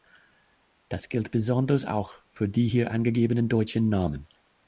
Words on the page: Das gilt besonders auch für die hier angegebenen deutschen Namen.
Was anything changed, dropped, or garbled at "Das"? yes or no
no